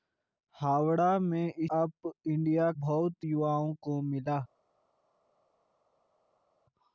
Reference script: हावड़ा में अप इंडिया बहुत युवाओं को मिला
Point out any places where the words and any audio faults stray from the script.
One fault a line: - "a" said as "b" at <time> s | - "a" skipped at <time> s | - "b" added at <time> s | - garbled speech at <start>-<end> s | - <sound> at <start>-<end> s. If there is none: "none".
none